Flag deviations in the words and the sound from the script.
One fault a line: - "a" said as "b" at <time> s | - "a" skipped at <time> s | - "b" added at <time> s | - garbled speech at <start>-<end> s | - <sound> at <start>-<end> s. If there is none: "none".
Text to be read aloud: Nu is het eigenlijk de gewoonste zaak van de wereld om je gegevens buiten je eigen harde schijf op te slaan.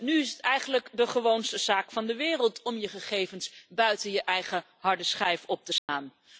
- dropout at 5.8-5.9 s